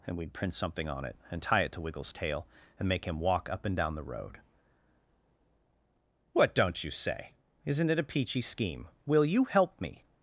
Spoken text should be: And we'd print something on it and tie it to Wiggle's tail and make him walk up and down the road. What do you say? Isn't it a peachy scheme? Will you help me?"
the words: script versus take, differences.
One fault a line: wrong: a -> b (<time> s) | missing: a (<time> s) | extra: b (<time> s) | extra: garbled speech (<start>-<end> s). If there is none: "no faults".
wrong: do -> don't (6.5 s)